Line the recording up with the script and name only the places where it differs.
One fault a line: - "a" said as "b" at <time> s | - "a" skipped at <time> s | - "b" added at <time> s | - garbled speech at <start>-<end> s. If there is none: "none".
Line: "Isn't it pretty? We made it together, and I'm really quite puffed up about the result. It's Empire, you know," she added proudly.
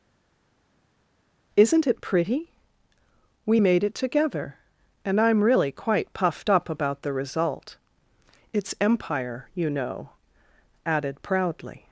- "she" skipped at 10.1 s